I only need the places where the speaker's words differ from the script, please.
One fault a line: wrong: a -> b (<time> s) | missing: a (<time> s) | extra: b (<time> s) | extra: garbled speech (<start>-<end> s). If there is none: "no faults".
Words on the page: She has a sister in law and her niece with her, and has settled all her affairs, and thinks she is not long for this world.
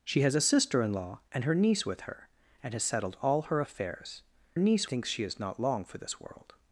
wrong: and -> niece (4.6 s)